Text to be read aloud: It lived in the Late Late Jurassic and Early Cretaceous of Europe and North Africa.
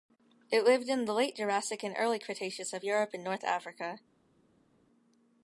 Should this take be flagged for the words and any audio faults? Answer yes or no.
yes